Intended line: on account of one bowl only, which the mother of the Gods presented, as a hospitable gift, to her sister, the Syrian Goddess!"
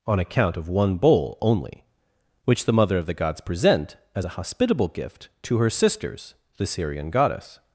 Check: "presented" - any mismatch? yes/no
yes